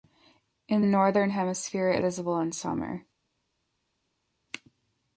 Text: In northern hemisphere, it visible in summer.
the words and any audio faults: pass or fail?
pass